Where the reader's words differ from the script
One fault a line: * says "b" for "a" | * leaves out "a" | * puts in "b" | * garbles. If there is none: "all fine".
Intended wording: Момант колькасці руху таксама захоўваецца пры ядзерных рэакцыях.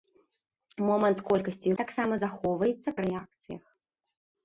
* leaves out "руху"
* leaves out "пры ядзерных"